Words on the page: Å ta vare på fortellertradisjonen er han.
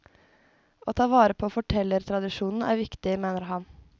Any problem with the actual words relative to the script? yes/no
yes